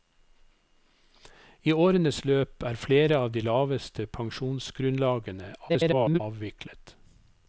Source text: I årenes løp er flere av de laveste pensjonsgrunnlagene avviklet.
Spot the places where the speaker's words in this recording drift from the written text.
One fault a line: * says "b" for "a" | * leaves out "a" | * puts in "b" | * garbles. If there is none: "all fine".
* garbles